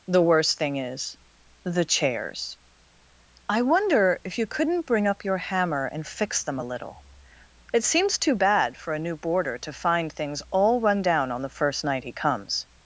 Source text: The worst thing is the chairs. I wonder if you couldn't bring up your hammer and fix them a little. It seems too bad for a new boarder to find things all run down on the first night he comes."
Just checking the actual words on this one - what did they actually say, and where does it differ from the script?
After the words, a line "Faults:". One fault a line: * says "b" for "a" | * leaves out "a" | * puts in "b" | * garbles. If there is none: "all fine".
The worst thing is the chairs. I wonder if you couldn't bring up your hammer and fix them a little. It seems too bad for a new boarder to find things all run down on the first night he comes."
Faults:
all fine